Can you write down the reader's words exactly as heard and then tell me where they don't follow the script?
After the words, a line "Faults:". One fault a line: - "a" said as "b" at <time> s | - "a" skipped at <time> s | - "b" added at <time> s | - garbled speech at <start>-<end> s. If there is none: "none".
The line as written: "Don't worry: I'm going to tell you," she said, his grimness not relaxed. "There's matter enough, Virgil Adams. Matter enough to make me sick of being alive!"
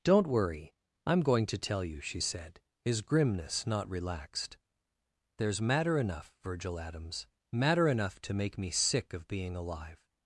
"Don't worry: I'm going to tell you," she said, his grimness not relaxed. "There's matter enough, Virgil Adams. Matter enough to make me sick of being alive!"
Faults:
none